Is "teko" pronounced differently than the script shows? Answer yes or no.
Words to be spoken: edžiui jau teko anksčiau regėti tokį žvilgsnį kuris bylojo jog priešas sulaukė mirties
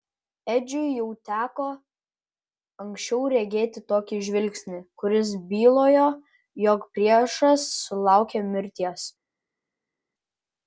no